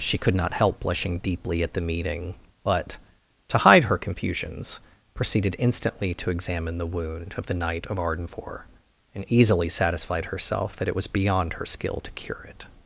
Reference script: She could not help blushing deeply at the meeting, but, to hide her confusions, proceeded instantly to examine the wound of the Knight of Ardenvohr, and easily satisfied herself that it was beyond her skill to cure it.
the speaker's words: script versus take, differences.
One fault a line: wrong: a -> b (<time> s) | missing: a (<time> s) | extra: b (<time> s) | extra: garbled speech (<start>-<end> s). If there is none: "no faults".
no faults